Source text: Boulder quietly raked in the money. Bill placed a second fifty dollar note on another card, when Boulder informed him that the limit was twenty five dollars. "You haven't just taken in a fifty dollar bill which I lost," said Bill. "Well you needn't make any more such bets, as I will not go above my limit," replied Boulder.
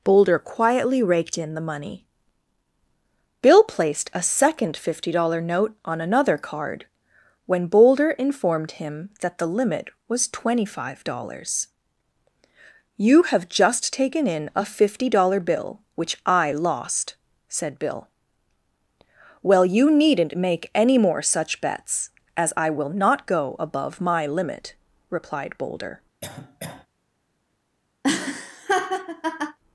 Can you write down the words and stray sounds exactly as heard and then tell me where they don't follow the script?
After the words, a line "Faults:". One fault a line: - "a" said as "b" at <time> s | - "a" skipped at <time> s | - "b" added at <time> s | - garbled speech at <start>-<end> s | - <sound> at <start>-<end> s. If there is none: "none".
Boulder quietly raked in the money. Bill placed a second fifty dollar note on another card, when Boulder informed him that the limit was twenty five dollars. "You have just taken in a fifty dollar bill which I lost," said Bill. "Well you needn't make any more such bets, as I will not go above my limit," replied Boulder.
Faults:
- "haven't" said as "have" at 13.2 s
- cough at 26.2-26.9 s
- laugh at 28.0-29.6 s